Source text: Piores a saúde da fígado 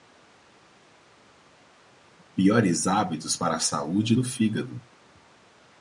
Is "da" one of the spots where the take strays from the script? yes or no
yes